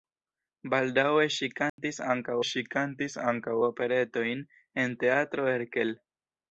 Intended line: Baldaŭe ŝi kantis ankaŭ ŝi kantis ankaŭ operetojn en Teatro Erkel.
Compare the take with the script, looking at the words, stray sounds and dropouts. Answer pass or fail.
fail